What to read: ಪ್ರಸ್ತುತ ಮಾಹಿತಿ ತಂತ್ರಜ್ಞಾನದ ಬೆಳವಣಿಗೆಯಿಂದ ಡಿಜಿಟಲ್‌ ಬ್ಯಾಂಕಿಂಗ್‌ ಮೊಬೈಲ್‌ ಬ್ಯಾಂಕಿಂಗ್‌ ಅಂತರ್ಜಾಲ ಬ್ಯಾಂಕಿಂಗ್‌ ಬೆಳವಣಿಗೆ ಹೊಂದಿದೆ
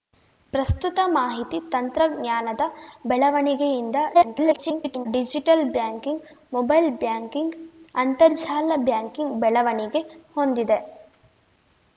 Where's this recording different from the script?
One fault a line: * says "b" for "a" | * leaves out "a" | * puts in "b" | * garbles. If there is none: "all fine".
* garbles